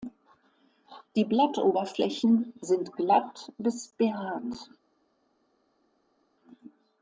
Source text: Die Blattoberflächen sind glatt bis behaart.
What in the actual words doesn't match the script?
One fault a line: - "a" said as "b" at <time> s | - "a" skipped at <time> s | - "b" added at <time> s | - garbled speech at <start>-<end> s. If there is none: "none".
none